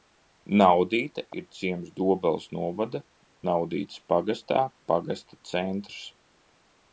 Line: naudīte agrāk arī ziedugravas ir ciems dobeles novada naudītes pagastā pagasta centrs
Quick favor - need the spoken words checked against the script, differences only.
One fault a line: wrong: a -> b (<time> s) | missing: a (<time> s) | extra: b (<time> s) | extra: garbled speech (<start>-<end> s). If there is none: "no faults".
missing: agrāk arī ziedugravas (1.2 s)